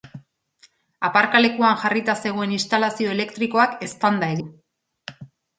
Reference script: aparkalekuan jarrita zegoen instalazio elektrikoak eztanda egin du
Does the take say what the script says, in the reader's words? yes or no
no